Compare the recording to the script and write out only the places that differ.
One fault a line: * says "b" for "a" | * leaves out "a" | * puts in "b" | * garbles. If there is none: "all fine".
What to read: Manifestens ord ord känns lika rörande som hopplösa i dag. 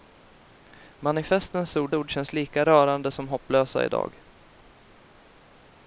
all fine